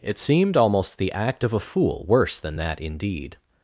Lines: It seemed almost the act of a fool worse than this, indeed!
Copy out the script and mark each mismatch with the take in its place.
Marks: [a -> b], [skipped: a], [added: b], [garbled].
It seemed almost the act of a fool worse than [this, -> that] indeed!